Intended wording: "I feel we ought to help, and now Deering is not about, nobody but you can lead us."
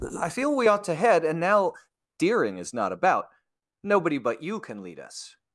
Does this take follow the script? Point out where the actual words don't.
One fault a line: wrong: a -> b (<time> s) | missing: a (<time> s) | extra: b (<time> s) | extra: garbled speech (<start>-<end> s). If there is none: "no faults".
wrong: help -> head (0.9 s)